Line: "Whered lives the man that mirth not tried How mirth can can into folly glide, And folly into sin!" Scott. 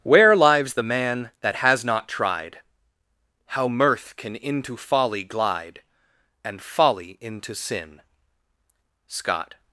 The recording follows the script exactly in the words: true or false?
false